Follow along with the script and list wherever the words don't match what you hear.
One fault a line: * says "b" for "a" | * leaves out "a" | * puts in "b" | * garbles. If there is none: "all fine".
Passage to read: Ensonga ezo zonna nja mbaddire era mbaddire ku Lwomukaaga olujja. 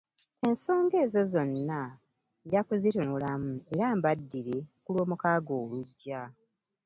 * says "kuzitunulamu" for "mbaddire"